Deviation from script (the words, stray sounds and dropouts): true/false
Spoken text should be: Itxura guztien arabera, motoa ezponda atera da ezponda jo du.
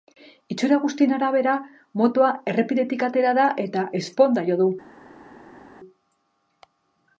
true